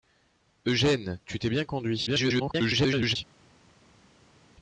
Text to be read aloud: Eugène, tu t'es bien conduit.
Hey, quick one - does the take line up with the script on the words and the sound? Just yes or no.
no